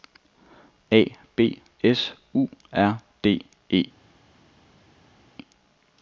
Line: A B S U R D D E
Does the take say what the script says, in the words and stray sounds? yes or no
no